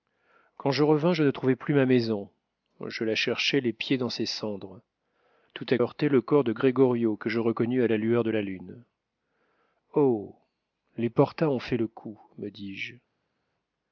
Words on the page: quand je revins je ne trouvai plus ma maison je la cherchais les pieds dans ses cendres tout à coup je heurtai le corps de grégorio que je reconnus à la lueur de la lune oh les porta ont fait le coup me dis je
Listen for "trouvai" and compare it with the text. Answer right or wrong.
right